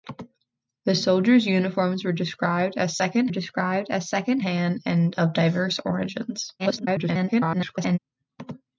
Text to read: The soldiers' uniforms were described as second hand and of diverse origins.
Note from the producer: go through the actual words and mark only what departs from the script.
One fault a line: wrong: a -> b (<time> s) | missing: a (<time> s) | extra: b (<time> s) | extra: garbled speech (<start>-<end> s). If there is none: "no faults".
extra: described as second (3.3 s)
extra: garbled speech (6.6-8.0 s)